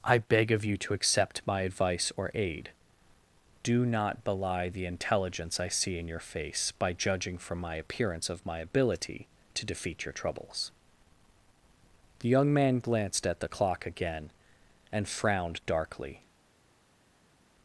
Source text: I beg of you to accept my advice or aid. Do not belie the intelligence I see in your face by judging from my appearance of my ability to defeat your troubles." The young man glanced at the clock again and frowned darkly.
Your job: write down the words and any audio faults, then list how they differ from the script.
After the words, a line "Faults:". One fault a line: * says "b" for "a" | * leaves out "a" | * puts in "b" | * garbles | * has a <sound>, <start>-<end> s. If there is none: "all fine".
I beg of you to accept my advice or aid. Do not belie the intelligence I see in your face by judging from my appearance of my ability to defeat your troubles." The young man glanced at the clock again and frowned darkly.
Faults:
all fine